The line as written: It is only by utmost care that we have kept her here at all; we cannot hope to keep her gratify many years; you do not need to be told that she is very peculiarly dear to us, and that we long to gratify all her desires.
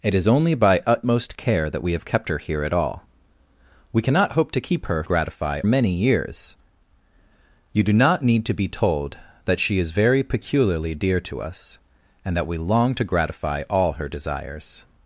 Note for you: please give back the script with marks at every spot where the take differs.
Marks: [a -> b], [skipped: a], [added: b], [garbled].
It is only by utmost care that we have kept her here at all; we cannot hope to keep her gratify many years; you do not need to be told that she is very peculiarly dear to us, and that we long to gratify all her desires.